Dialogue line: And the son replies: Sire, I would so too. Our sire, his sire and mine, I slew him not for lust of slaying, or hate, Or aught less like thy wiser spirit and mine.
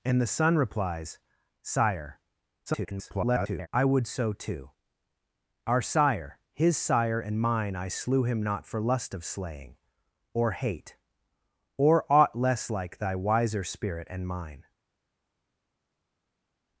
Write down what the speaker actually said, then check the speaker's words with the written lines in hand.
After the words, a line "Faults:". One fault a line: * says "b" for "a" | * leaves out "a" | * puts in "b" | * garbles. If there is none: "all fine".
And the son replies: Sire, [garbled] I would so too. Our sire, his sire and mine, I slew him not for lust of slaying, or hate, Or aught less like thy wiser spirit and mine.
Faults:
* garbles